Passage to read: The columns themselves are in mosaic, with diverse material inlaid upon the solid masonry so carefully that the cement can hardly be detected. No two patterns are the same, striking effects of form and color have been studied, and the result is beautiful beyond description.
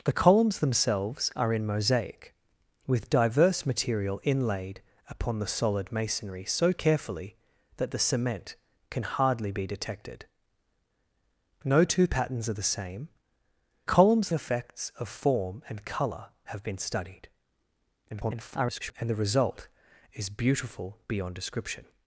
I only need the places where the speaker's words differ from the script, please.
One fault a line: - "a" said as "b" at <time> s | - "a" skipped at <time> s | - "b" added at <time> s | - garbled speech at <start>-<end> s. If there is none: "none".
- "striking" said as "columns" at 13.8 s
- garbled speech at 18.1-18.9 s